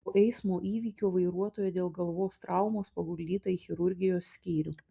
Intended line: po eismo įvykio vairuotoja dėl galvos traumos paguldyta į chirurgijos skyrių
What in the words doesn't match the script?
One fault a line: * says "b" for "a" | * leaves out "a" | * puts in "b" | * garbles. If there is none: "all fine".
all fine